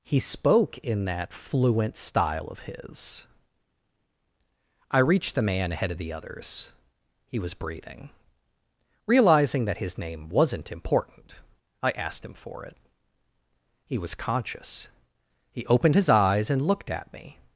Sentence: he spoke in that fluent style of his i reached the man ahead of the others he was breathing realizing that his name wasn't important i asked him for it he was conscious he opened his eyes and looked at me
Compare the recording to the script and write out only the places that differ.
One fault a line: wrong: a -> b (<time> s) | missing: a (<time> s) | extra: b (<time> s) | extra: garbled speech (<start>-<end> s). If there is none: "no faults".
no faults